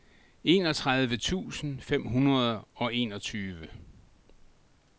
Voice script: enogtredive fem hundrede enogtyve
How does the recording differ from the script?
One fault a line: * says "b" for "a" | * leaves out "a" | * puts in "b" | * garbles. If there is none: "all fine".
* puts in "tusind"
* puts in "og"